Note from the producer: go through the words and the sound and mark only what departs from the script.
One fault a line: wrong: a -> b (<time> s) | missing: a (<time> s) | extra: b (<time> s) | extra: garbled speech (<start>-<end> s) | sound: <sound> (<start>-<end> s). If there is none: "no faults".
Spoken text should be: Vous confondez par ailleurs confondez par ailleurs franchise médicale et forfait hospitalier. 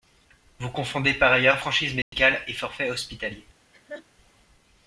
missing: confondez par ailleurs (1.6 s)
sound: dropout (2.0-2.1 s)
sound: laugh (3.7-4.1 s)